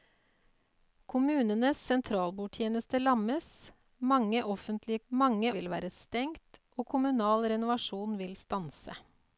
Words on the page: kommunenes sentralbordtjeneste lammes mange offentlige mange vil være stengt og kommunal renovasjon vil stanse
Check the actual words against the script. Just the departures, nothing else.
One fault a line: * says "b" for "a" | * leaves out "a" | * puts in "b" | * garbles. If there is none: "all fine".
all fine